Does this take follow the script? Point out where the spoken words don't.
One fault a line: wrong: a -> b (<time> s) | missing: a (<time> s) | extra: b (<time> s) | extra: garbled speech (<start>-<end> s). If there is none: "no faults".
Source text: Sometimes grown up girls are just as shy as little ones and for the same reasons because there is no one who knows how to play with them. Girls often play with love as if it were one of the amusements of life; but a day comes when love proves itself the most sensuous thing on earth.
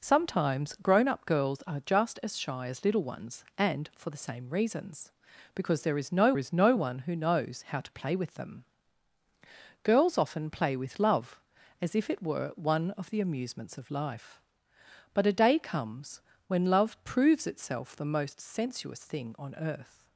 extra: is no (6.4 s)